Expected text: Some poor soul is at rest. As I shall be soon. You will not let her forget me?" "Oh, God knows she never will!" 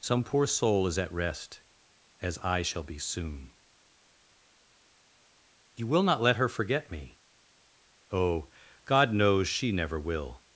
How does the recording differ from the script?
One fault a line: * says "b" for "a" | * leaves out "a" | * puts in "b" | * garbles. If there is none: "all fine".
all fine